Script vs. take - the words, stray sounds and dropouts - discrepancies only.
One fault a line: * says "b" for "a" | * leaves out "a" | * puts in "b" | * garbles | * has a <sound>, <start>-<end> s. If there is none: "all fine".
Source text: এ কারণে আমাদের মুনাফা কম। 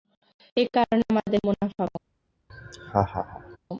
* has a laugh, 2.5-3.6 s